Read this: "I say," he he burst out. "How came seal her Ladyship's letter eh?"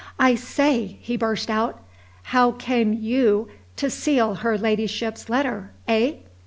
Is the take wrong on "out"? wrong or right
right